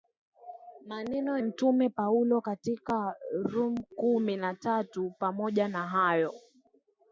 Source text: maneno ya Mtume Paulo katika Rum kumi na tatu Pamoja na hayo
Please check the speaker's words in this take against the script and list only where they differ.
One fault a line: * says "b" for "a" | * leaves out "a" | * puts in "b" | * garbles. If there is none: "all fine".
* leaves out "ya"